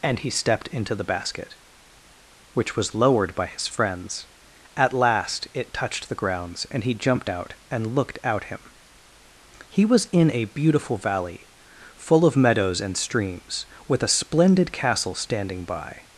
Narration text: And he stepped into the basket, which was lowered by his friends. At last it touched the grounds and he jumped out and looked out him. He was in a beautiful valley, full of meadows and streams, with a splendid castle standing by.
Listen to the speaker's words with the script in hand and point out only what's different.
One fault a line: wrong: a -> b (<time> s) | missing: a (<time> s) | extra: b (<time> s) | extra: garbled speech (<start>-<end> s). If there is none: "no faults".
no faults